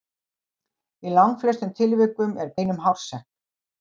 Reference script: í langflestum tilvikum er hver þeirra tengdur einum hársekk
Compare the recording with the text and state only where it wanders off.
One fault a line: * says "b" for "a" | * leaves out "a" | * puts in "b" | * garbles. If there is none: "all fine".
* leaves out "hver þeirra tengdur"